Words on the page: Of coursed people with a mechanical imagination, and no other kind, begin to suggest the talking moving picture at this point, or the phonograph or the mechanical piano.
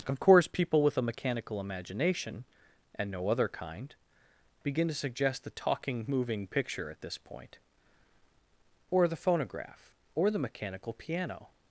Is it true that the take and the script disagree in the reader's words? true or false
true